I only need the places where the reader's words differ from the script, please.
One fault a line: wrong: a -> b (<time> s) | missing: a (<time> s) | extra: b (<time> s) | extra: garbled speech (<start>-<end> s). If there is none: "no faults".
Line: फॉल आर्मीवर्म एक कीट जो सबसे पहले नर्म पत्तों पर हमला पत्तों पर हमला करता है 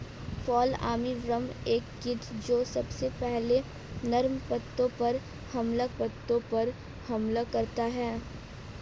no faults